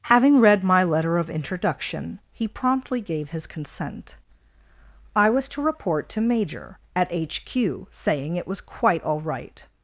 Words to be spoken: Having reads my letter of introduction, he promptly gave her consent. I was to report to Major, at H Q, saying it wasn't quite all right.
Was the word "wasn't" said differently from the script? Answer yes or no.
yes